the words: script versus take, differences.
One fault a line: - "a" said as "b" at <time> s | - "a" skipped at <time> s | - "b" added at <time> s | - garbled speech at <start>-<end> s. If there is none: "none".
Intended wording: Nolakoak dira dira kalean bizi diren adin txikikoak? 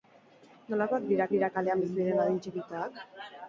none